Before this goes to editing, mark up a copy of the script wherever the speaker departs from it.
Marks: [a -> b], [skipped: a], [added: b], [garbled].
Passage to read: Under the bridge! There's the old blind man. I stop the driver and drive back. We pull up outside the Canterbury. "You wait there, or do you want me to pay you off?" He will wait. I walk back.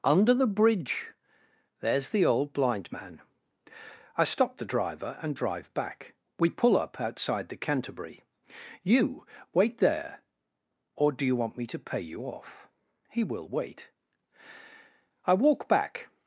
Under the bridge! There's the old blind man. I stop the driver and drive back. We pull up outside the Canterbury. "You wait there, or do you want me to pay you off?" He will wait. I walk back.